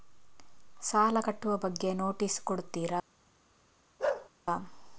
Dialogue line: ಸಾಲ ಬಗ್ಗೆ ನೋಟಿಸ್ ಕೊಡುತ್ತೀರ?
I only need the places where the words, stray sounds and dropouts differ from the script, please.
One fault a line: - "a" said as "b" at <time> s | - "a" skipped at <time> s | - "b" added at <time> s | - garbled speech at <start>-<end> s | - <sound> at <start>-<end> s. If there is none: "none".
- "ಕಟ್ಟುವ" added at 1.2 s
- bark at 4.0-4.3 s